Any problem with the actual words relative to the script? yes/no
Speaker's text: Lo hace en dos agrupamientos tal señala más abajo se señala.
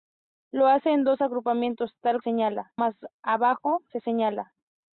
no